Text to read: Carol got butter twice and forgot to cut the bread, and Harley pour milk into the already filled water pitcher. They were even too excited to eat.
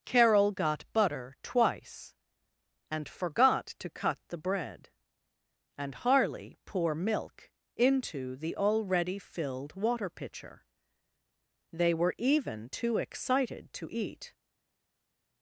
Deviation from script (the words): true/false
false